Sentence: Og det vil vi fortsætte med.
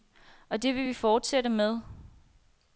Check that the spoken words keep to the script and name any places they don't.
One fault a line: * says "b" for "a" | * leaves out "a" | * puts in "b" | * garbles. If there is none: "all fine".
all fine